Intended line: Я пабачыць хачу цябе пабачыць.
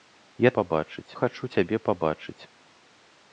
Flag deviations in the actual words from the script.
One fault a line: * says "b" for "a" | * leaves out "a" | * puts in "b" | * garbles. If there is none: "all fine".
all fine